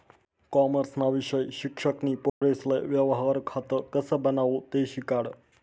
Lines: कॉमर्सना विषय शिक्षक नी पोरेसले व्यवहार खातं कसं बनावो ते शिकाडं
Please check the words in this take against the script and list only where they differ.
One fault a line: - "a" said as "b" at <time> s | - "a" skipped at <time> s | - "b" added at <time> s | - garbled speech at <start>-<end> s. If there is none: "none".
none